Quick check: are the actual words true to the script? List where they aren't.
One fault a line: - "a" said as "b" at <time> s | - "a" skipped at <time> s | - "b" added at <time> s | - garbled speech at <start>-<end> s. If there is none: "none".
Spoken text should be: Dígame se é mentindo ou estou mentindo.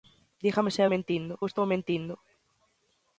none